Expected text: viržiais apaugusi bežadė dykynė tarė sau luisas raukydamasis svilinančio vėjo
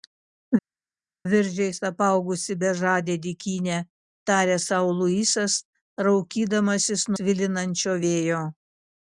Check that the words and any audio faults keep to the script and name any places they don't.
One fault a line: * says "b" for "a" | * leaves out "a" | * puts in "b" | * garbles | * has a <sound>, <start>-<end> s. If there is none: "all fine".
all fine